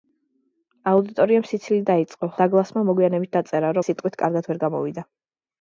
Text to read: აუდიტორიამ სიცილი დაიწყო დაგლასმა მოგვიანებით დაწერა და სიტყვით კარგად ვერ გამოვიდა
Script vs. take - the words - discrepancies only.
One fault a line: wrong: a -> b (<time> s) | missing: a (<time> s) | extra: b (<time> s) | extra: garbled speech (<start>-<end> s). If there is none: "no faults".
no faults